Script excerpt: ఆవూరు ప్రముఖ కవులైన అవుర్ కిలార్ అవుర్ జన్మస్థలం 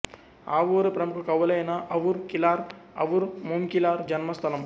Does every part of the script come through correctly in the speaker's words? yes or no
no